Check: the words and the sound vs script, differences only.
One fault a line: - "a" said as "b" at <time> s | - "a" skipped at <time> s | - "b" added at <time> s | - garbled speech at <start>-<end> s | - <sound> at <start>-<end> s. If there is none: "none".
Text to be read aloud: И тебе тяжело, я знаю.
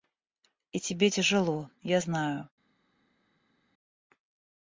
none